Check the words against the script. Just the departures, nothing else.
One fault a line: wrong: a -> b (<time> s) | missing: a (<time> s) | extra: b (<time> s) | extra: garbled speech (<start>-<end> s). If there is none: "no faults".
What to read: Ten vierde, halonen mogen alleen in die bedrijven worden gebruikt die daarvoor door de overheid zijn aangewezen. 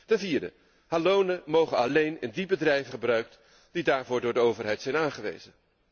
missing: worden (2.9 s)